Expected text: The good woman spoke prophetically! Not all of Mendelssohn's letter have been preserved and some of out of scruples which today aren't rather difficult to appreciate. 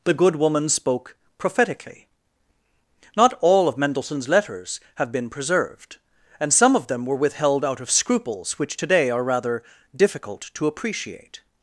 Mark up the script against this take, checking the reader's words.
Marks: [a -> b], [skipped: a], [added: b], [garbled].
The good woman spoke prophetically! Not all of Mendelssohn's [letter -> letters] have been preserved and some of [added: them were withheld] out of scruples which today [aren't -> are] rather difficult to appreciate.